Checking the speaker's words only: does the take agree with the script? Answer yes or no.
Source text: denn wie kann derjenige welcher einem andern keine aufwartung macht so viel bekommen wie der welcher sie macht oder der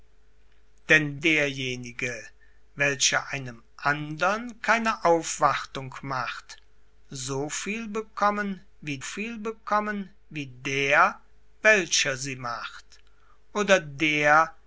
no